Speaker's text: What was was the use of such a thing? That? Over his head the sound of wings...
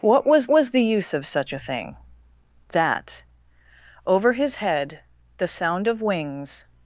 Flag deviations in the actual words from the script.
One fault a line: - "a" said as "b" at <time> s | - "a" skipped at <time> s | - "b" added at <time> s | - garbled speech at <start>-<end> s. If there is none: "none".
none